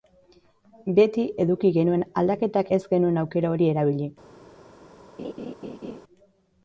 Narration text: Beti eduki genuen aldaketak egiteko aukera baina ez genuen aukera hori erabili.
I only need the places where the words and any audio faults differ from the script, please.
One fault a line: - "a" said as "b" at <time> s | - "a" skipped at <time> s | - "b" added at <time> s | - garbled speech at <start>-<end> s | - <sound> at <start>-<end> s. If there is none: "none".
- "egiteko aukera baina" skipped at 2.7 s
- laugh at 5.2-6.0 s